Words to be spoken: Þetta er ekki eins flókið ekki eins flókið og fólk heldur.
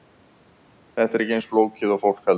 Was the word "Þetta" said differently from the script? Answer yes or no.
no